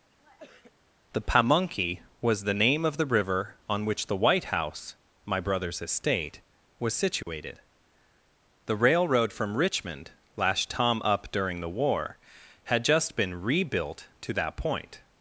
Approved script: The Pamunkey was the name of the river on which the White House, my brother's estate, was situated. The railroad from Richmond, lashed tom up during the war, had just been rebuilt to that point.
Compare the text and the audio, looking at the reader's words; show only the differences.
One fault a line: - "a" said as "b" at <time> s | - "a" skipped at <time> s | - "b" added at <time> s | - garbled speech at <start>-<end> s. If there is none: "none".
none